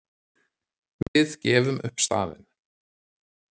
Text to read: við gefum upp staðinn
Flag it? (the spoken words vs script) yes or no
no